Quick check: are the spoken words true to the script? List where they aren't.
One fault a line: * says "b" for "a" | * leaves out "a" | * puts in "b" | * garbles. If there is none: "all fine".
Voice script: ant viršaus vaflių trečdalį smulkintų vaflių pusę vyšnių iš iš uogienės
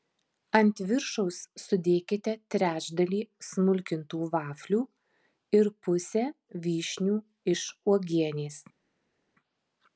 * says "sudėkite" for "vaflių"
* puts in "ir"
* leaves out "iš"